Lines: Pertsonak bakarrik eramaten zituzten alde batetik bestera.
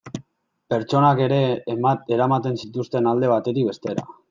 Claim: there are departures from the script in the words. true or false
true